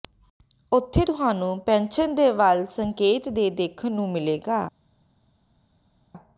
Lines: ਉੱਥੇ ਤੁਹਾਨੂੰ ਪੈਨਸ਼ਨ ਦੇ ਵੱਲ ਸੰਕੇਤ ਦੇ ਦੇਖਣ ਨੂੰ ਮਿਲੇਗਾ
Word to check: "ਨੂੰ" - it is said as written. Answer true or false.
true